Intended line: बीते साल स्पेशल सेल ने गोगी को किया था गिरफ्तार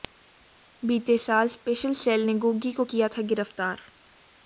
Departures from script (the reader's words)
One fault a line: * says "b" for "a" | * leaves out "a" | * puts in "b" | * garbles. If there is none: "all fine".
all fine